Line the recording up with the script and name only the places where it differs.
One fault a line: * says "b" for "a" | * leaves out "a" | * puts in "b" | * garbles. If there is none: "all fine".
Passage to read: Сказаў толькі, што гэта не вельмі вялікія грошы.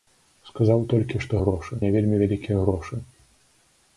* says "грошы" for "гэта"